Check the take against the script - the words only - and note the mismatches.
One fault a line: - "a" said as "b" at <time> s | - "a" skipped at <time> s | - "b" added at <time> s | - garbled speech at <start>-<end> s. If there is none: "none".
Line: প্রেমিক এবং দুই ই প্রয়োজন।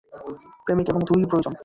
none